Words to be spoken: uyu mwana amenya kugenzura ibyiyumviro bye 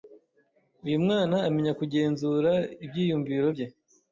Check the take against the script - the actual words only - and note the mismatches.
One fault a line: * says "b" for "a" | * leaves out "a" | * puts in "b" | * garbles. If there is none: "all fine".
all fine